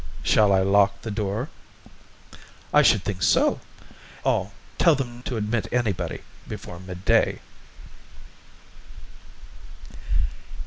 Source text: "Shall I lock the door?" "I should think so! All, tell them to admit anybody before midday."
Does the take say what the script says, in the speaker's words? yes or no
yes